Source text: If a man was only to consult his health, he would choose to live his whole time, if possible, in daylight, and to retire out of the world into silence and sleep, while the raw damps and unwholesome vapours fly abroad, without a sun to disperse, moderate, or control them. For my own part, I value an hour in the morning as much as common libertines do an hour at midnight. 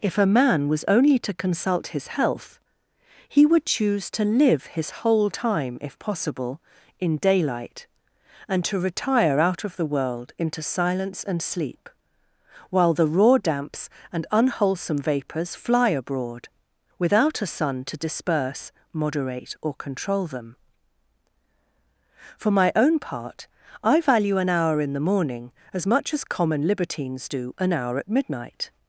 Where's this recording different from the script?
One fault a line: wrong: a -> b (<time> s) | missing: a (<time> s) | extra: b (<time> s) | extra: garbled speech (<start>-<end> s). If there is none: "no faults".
no faults